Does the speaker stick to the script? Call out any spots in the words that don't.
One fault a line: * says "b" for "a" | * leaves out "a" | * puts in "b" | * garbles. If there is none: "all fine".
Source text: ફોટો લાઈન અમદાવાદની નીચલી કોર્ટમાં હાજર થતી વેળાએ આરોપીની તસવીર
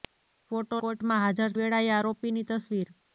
* leaves out "લાઈન અમદાવાદની નીચલી"
* leaves out "થતી"